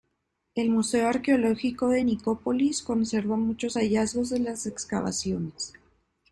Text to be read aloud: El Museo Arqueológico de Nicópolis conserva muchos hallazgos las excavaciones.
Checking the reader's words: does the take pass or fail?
fail